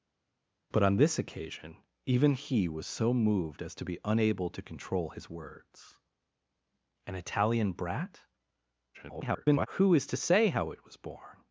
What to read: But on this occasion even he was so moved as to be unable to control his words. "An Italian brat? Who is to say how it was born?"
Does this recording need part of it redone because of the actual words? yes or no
yes